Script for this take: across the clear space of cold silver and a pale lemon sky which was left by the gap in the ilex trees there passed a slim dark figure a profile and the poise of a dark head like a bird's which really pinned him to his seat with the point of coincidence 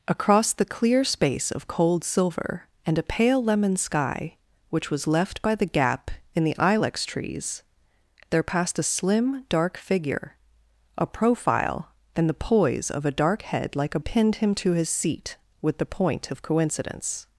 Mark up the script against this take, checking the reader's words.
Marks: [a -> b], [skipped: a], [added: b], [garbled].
across the clear space of cold silver and a pale lemon sky which was left by the gap in the ilex trees there passed a slim dark figure a profile and the poise of a dark head like a [skipped: bird's which really] pinned him to his seat with the point of coincidence